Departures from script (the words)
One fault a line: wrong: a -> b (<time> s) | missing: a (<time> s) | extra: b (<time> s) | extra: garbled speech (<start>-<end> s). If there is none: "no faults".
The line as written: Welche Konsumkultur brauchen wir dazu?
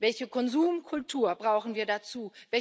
no faults